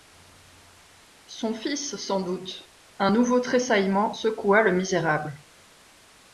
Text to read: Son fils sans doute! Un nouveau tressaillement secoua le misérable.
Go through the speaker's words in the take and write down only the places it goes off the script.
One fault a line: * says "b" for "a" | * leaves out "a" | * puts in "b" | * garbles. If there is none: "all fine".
all fine